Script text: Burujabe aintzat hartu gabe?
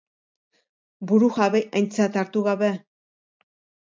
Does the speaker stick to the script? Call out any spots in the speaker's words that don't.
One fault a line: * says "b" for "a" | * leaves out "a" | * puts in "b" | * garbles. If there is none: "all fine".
all fine